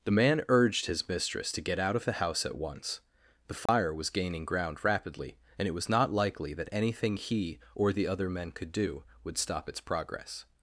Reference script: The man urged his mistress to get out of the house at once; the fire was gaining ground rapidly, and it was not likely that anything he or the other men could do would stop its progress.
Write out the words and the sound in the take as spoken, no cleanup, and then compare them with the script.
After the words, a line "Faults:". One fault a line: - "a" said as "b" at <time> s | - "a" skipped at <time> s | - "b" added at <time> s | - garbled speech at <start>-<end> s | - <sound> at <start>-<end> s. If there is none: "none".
The man urged his mistress to get out of the house at once; the fire was gaining ground rapidly, and it was not likely that anything he or the other men could do would stop its progress.
Faults:
- dropout at 3.7-3.7 s